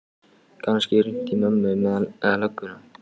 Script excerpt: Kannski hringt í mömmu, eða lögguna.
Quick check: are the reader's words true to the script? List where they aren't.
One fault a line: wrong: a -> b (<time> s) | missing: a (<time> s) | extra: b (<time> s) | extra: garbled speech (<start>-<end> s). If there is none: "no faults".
no faults